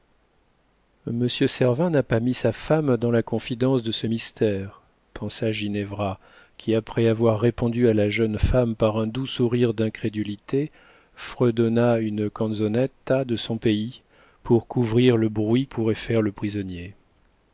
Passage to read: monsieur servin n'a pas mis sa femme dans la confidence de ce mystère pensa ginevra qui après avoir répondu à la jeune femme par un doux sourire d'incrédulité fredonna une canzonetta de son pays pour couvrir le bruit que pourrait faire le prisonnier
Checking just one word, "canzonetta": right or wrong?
right